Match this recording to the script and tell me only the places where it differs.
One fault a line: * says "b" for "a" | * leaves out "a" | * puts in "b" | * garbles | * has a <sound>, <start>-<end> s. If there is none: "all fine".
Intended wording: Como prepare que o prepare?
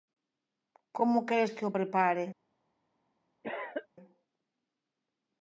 * says "queres" for "prepare"
* has a cough, 3.4-3.9 s